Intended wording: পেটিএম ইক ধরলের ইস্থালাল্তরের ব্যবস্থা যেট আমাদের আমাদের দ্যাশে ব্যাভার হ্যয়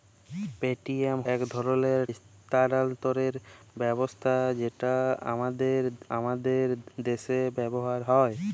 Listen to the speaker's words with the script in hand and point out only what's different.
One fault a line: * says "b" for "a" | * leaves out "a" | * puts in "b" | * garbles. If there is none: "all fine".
all fine